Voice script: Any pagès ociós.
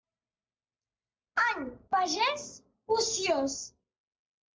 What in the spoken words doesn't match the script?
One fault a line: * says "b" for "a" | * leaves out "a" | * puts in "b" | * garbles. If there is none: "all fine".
all fine